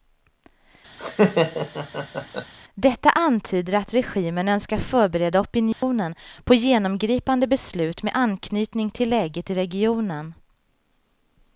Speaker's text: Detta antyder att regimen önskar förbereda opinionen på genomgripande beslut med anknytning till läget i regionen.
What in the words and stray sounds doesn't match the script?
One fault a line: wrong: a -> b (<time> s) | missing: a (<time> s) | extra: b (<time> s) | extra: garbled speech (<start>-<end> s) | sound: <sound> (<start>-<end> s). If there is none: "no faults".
sound: laugh (1.0-2.5 s)
sound: dropout (5.7-5.8 s)